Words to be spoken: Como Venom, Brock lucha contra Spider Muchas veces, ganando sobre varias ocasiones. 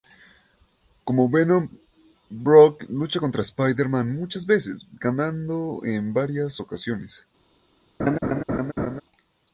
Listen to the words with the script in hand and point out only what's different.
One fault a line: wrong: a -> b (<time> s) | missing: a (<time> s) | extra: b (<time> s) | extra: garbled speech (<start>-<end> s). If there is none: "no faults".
extra: Man (3.9 s)
wrong: sobre -> en (5.8 s)